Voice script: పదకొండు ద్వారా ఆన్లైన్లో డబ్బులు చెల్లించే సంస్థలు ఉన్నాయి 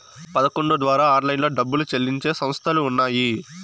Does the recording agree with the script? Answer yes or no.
yes